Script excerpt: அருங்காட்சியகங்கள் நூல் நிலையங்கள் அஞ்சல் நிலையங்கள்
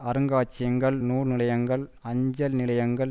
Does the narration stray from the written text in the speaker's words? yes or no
no